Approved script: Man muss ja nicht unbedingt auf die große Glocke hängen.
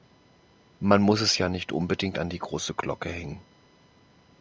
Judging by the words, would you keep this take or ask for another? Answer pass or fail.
fail